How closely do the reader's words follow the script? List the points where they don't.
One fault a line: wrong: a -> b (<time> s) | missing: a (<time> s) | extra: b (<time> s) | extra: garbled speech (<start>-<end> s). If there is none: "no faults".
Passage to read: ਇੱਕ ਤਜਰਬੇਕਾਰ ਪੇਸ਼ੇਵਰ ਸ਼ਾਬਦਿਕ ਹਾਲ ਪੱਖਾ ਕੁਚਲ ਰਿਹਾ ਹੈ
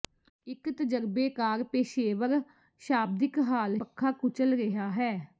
no faults